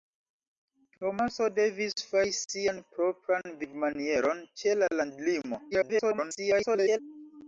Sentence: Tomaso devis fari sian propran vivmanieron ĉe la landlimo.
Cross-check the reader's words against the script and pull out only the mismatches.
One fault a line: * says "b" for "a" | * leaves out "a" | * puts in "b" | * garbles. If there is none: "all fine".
* garbles